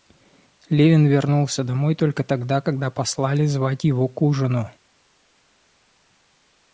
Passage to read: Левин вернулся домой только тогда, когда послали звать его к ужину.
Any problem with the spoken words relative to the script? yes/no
no